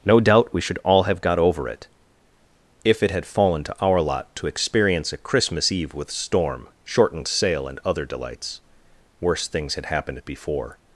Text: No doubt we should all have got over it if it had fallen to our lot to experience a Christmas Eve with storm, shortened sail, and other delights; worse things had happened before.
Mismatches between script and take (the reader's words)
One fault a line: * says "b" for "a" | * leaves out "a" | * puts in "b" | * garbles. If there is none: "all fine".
all fine